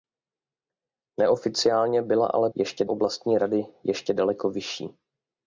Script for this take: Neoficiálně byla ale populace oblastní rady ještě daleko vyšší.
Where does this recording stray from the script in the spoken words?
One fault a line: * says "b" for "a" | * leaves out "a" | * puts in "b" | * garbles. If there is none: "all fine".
* says "ještě" for "populace"